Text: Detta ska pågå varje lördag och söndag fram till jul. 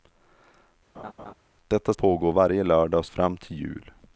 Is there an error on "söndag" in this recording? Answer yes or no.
yes